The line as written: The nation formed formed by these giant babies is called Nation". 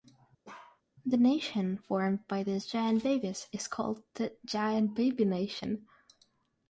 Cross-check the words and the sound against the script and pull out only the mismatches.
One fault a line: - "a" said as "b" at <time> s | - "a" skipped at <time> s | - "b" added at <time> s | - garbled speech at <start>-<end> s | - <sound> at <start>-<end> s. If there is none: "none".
- bark at 0.4-0.8 s
- "formed" skipped at 2.2 s
- "the Giant Baby" added at 4.2 s